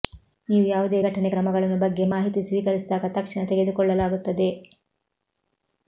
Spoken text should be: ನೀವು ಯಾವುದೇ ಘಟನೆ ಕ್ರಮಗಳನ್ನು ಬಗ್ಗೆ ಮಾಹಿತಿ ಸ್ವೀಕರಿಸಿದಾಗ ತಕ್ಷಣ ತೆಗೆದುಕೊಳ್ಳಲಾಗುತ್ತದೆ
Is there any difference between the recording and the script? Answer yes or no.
no